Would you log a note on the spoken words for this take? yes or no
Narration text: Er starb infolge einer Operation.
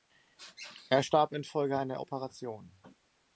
no